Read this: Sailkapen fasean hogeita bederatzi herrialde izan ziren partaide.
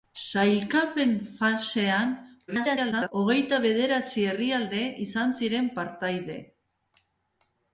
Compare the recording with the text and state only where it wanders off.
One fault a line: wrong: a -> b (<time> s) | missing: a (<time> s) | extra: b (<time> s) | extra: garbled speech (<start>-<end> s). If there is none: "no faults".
extra: garbled speech (2.5-3.1 s)